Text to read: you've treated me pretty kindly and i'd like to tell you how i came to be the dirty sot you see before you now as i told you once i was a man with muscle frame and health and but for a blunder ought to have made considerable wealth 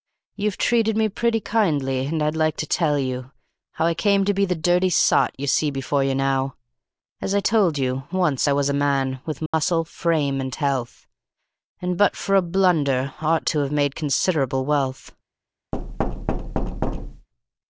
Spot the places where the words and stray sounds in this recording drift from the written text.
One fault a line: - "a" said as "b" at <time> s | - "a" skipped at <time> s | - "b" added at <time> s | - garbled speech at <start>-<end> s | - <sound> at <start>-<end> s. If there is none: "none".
- dropout at 9.5-9.5 s
- thud at 15.7-17.3 s